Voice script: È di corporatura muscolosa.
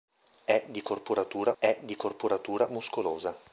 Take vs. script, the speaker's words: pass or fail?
fail